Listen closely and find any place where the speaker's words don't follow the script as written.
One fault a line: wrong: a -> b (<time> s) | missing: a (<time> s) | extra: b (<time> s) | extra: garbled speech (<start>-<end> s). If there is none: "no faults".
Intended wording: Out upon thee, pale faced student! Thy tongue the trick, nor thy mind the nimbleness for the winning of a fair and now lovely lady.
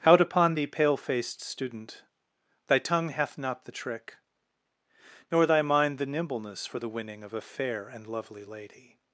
extra: hath not (3.1 s)
missing: now (8.1 s)